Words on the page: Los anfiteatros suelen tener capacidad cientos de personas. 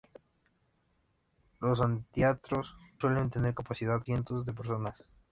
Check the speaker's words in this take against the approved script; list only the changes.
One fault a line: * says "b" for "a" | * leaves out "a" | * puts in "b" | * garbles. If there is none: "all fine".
all fine